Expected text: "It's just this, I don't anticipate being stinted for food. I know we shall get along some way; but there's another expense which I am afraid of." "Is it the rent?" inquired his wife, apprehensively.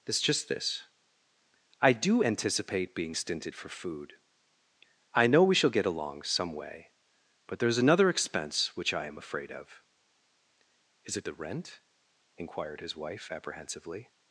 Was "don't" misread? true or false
true